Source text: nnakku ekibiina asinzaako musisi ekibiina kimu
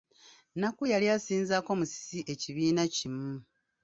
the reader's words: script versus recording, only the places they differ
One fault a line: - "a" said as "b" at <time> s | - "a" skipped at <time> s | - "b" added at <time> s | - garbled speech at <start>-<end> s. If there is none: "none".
- "ekibiina" said as "yali" at 0.9 s